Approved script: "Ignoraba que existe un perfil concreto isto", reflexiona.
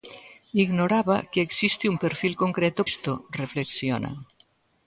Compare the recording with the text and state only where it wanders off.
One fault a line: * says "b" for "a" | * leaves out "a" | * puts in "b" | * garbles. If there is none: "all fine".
all fine